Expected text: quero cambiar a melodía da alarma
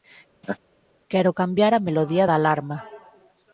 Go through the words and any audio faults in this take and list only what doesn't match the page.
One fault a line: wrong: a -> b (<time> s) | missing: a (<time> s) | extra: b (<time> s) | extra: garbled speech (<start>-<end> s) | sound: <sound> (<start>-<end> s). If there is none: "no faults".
sound: laugh (0.4-0.6 s)